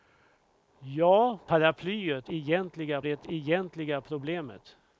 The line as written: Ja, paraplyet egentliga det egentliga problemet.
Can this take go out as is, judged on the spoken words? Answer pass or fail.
pass